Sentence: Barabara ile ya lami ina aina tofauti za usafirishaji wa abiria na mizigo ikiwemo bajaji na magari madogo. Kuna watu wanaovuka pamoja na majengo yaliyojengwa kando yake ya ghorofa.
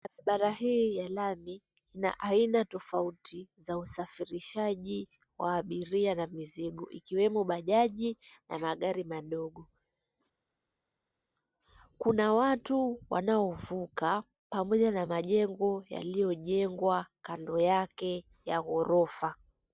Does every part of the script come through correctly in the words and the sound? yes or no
no